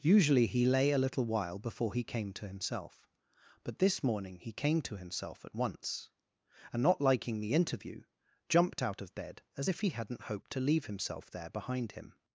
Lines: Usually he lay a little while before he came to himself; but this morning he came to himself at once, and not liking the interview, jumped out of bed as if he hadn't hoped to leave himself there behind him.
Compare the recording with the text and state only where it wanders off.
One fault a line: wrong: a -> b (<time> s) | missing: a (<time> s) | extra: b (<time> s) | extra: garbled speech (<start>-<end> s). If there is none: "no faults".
no faults